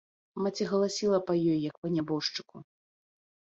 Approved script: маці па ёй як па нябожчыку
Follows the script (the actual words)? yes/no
no